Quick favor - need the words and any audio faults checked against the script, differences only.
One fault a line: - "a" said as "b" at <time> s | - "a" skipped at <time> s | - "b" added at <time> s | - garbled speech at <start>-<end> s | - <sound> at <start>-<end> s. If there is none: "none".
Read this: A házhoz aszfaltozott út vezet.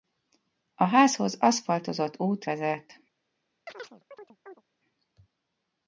- chirp at 3.7-4.6 s